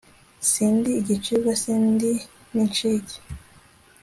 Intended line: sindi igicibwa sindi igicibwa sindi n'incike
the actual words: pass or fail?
fail